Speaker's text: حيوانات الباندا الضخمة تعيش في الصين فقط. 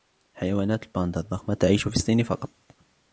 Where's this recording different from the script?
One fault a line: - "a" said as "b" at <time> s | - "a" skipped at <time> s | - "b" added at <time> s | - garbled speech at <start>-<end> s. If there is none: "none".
none